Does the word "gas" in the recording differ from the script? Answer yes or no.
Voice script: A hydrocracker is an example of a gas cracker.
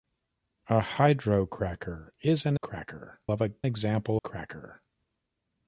yes